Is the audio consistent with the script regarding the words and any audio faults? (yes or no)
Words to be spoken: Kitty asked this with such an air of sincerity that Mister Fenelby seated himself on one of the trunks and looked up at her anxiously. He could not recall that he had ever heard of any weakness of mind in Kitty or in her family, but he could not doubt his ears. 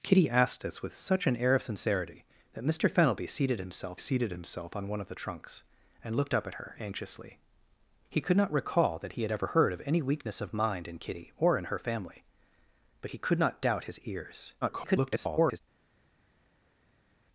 no